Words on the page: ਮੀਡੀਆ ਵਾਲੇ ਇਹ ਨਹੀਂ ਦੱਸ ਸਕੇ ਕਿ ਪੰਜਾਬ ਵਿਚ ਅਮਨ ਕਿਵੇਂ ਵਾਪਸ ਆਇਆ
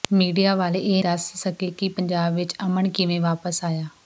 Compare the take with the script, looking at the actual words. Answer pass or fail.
fail